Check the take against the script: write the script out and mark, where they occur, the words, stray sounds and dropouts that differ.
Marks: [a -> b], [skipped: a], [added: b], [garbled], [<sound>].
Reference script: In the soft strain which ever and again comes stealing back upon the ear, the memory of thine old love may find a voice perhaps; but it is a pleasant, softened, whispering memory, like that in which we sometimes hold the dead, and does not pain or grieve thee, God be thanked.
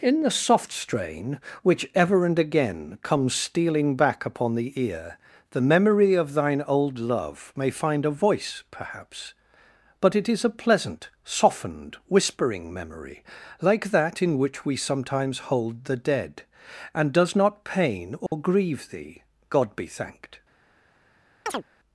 In the soft strain which ever and again comes stealing back upon the ear, the memory of thine old love may find a voice perhaps; but it is a pleasant, softened, whispering memory, like that in which we sometimes hold the dead, and does not pain or [dropout] grieve thee, God be thanked. [chirp]